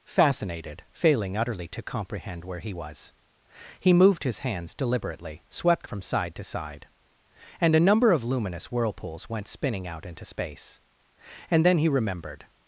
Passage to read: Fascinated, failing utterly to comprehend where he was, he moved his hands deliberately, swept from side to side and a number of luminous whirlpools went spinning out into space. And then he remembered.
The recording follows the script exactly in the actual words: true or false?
true